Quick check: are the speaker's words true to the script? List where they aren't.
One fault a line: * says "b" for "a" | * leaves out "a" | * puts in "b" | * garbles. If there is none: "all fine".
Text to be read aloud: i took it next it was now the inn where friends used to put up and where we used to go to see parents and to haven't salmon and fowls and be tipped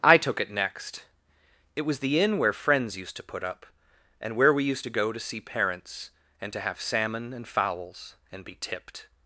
* leaves out "now"
* says "have" for "haven't"